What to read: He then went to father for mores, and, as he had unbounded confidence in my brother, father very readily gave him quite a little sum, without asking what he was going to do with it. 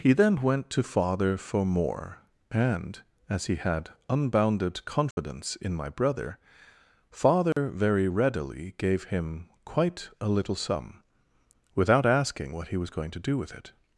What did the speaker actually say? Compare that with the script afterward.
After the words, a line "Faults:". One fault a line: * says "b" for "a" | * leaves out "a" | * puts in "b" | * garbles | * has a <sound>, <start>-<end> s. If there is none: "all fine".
He then went to father for more, and, as he had unbounded confidence in my brother, father very readily gave him quite a little sum, without asking what he was going to do with it.
Faults:
* says "more" for "mores"
* has a dropout, 5.1-5.2 s
* has a dropout, 7.5-7.6 s